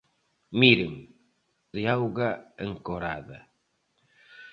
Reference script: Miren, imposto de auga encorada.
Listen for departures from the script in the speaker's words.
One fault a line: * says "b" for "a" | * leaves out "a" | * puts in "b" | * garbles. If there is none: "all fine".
* leaves out "imposto"